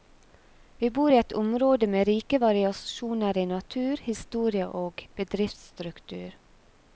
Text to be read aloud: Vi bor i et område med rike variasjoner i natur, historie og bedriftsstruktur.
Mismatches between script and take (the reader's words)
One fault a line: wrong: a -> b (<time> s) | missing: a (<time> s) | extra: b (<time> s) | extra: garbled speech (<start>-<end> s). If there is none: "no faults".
no faults